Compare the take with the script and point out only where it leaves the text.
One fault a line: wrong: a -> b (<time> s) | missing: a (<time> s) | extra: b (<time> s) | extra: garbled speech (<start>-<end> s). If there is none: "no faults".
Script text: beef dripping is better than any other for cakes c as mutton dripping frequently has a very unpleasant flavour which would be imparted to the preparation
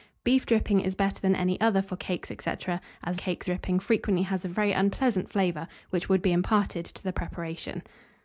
wrong: mutton -> cakes (3.2 s)